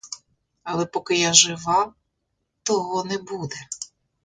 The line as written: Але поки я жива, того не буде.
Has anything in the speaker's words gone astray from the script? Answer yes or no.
no